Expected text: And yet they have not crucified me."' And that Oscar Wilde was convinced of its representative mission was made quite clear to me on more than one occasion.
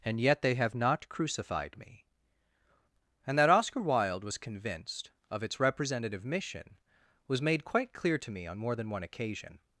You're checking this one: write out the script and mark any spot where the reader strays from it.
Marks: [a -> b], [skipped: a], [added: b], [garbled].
And yet they have not crucified me."' And that Oscar Wilde was convinced of its representative mission was made quite clear to me on more than one occasion.